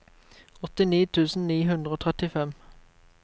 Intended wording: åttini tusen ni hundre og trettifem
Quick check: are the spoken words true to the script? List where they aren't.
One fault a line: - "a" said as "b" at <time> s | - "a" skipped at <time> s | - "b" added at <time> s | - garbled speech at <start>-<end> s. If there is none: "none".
none